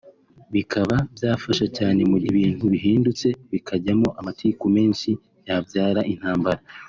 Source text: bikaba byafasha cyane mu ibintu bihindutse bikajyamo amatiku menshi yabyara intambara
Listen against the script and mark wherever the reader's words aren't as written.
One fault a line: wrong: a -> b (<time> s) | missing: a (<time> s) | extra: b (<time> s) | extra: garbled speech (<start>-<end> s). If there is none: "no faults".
no faults